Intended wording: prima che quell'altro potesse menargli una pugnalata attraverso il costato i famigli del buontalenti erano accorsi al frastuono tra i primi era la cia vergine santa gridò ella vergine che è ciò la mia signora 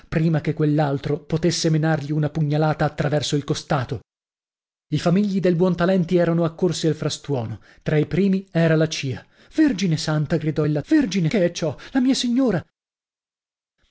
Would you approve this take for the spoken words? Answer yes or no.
yes